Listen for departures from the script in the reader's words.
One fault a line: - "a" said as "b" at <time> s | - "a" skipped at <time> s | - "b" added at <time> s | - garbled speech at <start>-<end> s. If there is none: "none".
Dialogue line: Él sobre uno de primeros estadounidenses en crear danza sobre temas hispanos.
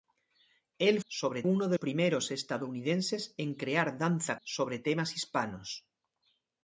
none